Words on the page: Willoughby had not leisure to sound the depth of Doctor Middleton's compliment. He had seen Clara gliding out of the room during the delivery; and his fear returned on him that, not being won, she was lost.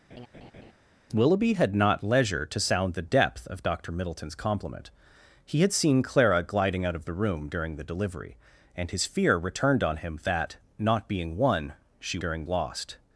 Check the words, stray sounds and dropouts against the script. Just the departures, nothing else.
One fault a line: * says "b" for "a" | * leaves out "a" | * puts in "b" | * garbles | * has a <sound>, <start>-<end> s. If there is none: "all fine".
* has a laugh, 0.1-0.7 s
* says "during" for "was"